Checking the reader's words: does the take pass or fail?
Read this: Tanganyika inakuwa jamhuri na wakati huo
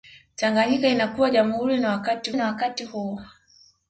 fail